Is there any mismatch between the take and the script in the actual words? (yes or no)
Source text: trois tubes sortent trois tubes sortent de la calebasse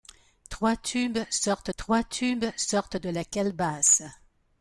no